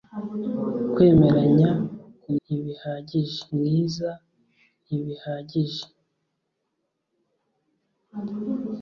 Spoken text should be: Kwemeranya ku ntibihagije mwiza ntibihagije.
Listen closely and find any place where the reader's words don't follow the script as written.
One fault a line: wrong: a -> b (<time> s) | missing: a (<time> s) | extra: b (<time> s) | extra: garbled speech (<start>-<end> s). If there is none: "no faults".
no faults